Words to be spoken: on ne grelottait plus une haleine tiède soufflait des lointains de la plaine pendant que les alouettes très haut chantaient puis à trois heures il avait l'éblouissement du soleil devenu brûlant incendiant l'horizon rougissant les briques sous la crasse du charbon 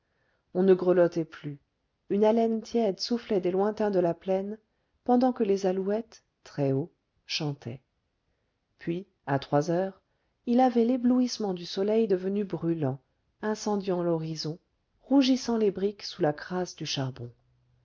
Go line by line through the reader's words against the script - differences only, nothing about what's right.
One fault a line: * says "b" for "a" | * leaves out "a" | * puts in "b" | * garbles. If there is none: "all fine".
all fine